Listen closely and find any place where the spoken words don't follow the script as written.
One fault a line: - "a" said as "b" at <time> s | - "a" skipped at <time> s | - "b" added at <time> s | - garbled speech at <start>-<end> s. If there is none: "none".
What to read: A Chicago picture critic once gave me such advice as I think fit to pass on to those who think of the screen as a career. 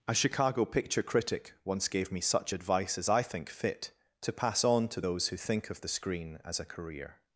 none